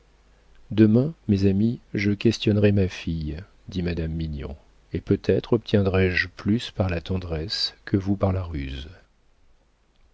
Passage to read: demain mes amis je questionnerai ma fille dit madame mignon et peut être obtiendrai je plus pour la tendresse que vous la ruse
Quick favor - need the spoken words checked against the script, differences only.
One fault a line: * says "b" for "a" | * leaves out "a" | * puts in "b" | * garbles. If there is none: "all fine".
* says "par" for "pour"
* puts in "par"